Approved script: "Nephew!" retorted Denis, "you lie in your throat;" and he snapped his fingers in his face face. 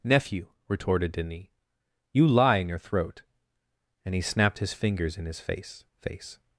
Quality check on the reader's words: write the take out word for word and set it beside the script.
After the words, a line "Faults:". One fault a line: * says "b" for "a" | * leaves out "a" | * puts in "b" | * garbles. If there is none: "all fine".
"Nephew!" retorted Denis, "you lie in your throat;" and he snapped his fingers in his face face.
Faults:
all fine